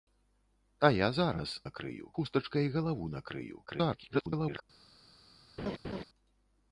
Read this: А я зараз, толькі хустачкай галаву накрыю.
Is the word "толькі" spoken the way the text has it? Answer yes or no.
no